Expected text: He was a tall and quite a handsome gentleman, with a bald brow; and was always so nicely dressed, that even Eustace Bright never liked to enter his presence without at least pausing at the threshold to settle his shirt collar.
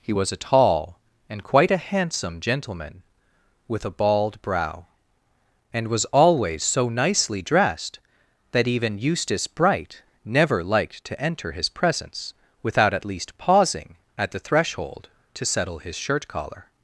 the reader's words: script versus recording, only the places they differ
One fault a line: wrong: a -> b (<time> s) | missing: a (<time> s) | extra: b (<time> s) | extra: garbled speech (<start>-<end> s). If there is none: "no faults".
no faults